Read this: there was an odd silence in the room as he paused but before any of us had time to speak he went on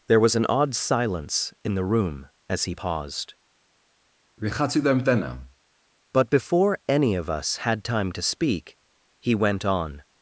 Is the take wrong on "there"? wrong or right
right